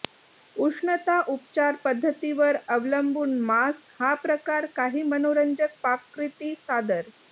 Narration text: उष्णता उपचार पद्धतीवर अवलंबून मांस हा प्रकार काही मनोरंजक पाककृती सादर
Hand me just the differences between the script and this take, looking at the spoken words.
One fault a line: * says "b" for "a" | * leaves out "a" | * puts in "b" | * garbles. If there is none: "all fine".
all fine